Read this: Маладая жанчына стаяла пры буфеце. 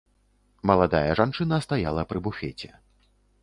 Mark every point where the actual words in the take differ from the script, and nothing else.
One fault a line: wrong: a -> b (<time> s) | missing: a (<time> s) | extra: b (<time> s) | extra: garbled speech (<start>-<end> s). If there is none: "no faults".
no faults